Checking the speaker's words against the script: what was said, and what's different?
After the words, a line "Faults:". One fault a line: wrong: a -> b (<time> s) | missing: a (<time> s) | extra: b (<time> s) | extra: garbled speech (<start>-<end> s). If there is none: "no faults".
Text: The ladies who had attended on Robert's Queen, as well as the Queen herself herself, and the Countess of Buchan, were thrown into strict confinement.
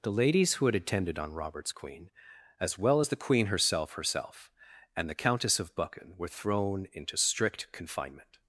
The ladies who had attended on Robert's Queen, as well as the Queen herself herself, and the Countess of Buchan, were thrown into strict confinement.
Faults:
no faults